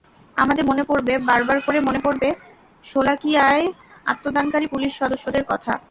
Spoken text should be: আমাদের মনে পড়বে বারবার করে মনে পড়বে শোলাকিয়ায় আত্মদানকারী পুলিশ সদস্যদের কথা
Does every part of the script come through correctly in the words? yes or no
yes